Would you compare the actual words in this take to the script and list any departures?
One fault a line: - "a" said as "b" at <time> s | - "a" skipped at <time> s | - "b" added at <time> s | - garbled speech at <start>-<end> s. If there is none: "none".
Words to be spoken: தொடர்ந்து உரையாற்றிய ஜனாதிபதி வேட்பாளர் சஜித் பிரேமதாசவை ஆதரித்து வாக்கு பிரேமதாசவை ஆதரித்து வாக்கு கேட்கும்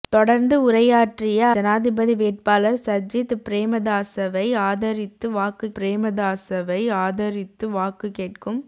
none